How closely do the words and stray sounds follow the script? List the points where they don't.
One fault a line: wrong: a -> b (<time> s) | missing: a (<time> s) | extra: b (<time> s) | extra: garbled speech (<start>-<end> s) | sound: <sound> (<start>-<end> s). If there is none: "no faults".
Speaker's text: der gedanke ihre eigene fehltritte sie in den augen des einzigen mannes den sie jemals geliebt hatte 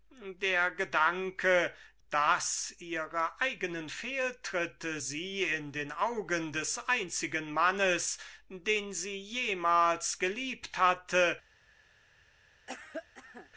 extra: daß (2.1 s)
sound: cough (12.7-13.5 s)